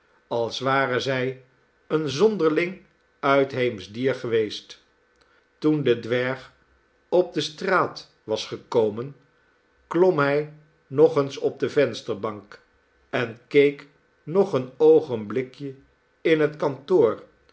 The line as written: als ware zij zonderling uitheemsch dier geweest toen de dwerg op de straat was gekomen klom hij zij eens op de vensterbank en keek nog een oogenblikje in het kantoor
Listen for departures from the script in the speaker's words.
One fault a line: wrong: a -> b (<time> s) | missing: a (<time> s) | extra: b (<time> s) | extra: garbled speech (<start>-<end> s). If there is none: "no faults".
extra: een (1.9 s)
wrong: zij -> nog (10.9 s)